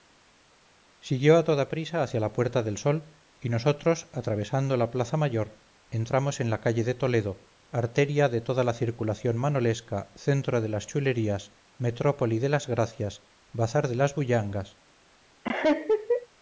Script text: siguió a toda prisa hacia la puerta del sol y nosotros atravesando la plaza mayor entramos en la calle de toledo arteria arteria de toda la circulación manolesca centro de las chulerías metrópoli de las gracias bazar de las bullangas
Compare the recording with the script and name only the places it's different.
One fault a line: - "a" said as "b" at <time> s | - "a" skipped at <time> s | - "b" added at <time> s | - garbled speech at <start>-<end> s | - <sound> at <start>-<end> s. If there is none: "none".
- "arteria" skipped at 8.3 s
- laugh at 15.4-16.3 s